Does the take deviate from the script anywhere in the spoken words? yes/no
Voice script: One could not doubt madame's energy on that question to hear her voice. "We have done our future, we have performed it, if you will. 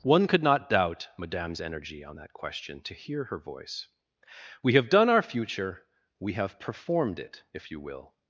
no